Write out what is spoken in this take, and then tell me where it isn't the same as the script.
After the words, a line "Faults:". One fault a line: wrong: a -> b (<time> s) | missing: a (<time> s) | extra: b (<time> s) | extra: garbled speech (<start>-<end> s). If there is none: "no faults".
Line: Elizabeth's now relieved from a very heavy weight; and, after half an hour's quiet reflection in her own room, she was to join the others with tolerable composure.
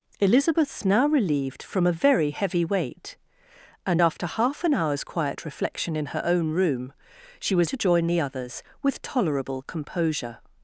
Elizabeth's now relieved from a very heavy weight; and, after half an hour's quiet reflection in her own room, she was to join the others with tolerable composure.
Faults:
no faults